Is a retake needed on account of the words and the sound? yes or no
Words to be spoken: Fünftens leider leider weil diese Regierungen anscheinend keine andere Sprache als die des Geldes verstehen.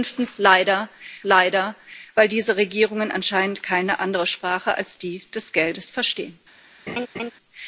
yes